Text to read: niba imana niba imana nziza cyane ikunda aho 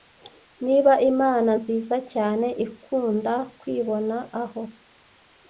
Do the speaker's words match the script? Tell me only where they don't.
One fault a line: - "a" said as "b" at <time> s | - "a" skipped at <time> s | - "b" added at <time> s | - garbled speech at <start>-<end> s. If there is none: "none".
- "niba imana" skipped at 1.5 s
- "kwibona" added at 3.6 s